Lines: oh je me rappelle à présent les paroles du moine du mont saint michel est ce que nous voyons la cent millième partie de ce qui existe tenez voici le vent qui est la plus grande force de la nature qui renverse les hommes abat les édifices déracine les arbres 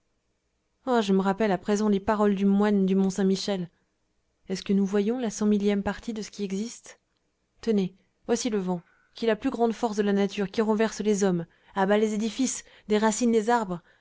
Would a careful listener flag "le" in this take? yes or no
no